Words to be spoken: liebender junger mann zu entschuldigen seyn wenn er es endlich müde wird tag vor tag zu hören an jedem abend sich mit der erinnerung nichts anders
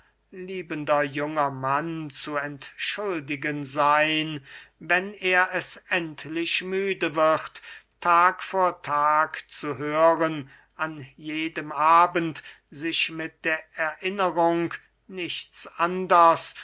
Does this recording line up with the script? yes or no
yes